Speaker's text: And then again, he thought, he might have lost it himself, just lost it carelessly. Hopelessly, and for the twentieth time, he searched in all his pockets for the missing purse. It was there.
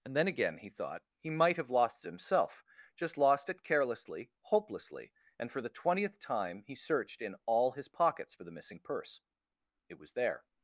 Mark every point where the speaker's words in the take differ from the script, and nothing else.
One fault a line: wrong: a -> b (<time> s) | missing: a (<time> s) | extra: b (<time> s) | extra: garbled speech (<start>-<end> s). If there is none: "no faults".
no faults